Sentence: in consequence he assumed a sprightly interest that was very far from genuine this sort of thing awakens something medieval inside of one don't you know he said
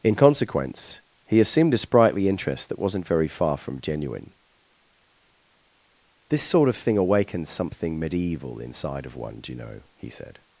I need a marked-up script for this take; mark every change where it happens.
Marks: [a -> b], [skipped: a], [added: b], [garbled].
in consequence he assumed a sprightly interest that [was -> wasn't] very far from genuine this sort of thing awakens something medieval inside of one [don't -> do] you know he said